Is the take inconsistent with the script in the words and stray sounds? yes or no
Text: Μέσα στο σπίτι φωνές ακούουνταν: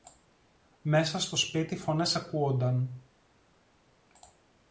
no